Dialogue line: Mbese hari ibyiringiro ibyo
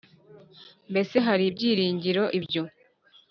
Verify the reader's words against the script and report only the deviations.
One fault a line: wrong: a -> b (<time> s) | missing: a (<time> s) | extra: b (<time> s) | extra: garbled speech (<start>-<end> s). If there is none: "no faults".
no faults